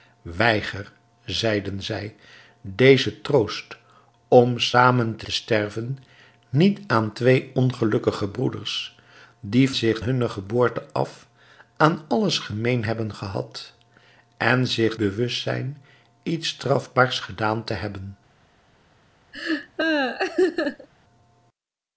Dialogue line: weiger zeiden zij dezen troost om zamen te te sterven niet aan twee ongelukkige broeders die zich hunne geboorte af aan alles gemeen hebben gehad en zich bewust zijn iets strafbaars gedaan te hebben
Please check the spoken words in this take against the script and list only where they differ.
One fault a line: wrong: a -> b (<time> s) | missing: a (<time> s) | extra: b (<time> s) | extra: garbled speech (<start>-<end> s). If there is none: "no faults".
no faults